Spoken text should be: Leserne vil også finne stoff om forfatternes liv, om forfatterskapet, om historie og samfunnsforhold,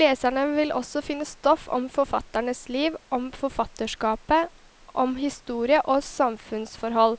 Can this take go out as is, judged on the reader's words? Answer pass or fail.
pass